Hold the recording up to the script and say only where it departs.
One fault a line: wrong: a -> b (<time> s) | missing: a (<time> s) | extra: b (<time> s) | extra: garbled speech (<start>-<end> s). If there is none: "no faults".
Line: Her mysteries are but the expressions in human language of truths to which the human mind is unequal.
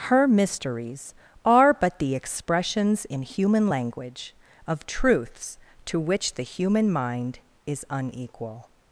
no faults